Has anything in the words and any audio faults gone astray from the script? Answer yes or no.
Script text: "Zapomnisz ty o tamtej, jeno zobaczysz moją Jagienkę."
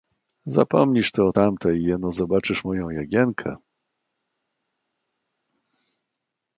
no